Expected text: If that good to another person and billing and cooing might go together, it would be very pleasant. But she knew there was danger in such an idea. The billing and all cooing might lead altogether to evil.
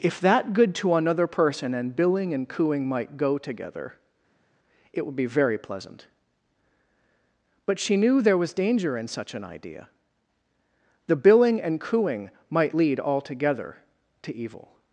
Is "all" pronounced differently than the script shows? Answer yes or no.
yes